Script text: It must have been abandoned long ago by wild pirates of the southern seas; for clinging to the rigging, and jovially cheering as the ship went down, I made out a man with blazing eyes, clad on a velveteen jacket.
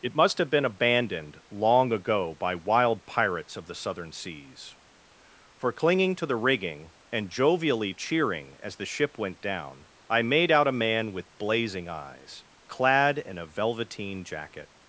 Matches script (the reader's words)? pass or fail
fail